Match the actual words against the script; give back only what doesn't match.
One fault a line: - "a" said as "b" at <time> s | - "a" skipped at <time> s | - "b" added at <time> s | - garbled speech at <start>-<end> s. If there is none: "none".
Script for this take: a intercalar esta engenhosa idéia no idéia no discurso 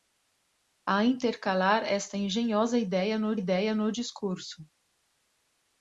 none